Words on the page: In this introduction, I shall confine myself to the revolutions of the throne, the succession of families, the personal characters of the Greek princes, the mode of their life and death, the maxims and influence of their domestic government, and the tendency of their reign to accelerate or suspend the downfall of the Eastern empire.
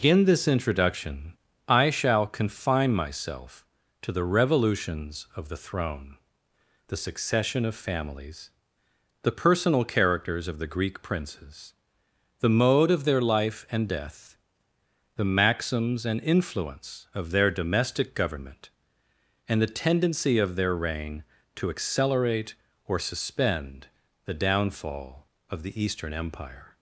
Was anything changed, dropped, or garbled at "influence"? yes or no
no